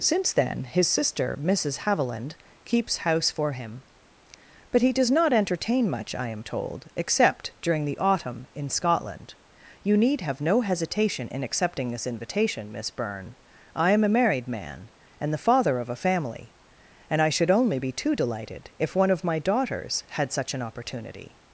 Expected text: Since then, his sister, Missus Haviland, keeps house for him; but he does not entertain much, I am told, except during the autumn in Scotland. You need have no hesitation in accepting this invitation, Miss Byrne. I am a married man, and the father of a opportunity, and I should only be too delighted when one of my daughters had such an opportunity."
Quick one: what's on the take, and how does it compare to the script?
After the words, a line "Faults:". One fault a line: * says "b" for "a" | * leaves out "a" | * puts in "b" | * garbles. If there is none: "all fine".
Since then, his sister, Missus Haviland, keeps house for him; but he does not entertain much, I am told, except during the autumn in Scotland. You need have no hesitation in accepting this invitation, Miss Byrne. I am a married man, and the father of a family, and I should only be too delighted if one of my daughters had such an opportunity."
Faults:
* says "family" for "opportunity"
* says "if" for "when"